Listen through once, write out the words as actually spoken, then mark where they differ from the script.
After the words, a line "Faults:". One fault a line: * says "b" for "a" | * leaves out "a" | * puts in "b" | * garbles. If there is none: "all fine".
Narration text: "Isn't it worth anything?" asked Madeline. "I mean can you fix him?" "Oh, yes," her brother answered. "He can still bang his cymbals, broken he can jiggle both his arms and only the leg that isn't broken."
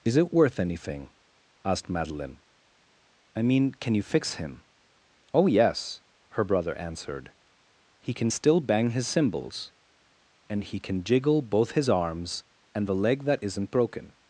"Is it worth anything?" asked Madeline. "I mean can you fix him?" "Oh, yes," her brother answered. "He can still bang his cymbals, and he can jiggle both his arms and the leg that isn't broken."
Faults:
* says "Is" for "Isn't"
* says "and" for "broken"
* leaves out "only"